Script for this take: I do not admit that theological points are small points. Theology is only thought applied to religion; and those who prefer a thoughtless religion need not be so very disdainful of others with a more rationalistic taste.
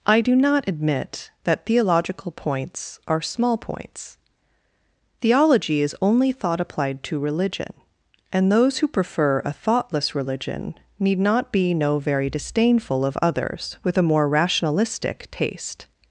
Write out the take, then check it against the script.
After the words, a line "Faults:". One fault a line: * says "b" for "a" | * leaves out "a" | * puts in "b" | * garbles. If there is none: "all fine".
I do not admit that theological points are small points. Theology is only thought applied to religion; and those who prefer a thoughtless religion need not be no very disdainful of others with a more rationalistic taste.
Faults:
* says "no" for "so"